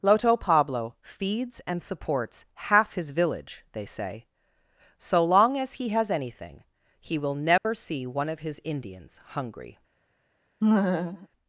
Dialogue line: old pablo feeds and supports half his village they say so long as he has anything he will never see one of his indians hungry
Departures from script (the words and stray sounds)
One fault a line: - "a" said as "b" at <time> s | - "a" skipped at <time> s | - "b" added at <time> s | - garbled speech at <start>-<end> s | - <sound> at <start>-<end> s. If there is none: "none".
- "old" said as "loto" at 0.0 s
- dropout at 7.6-7.7 s
- laugh at 10.6-11.3 s